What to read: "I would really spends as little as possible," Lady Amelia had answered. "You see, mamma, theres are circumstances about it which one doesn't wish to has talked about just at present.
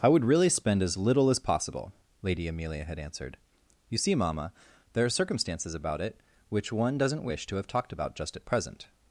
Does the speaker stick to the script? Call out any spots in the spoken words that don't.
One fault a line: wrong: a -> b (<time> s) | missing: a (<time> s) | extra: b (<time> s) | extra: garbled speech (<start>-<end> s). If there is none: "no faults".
wrong: spends -> spend (0.5 s)
wrong: theres -> there (4.9 s)
wrong: has -> have (7.5 s)